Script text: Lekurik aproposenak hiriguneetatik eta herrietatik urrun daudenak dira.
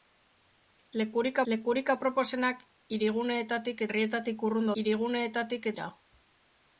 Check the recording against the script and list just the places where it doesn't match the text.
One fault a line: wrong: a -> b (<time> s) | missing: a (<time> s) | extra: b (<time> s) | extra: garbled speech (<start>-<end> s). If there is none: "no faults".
extra: lekurik (1.5 s)
missing: eta (3.8 s)
wrong: daudenak -> hiriguneetatik (4.8 s)